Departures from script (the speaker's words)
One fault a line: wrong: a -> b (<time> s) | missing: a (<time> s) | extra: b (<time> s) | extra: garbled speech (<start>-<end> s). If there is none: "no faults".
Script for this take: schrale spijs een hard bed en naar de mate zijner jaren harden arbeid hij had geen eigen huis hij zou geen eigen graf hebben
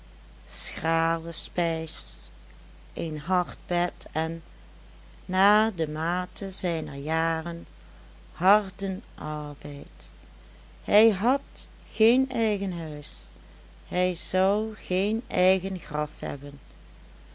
no faults